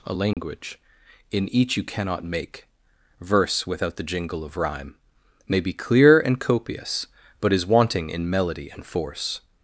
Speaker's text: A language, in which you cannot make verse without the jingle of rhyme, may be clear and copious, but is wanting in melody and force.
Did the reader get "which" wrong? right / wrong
wrong